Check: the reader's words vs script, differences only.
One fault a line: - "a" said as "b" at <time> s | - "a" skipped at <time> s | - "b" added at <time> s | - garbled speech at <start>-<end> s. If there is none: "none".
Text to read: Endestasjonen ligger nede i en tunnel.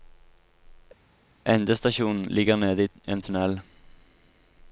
none